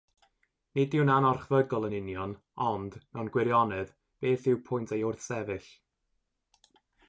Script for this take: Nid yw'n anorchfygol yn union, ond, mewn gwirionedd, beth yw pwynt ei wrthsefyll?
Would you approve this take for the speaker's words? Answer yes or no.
yes